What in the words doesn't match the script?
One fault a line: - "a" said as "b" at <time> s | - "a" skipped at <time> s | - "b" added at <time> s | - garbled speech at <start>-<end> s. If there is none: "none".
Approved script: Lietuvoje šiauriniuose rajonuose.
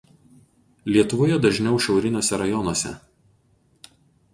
- "dažniau" added at 1.4 s